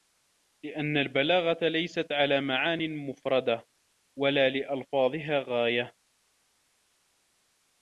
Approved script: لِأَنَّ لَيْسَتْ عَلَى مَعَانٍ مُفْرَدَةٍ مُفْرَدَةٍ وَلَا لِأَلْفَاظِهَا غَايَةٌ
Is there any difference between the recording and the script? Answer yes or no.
yes